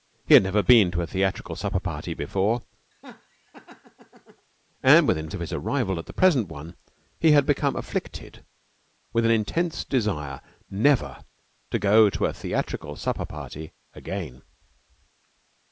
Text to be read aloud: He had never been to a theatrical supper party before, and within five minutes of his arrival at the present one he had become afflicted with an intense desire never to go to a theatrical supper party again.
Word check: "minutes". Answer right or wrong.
wrong